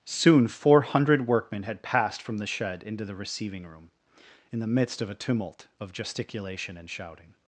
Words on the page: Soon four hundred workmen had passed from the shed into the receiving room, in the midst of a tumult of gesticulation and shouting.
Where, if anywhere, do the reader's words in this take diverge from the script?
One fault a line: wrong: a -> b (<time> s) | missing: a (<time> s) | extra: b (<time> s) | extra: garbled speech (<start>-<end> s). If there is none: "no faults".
no faults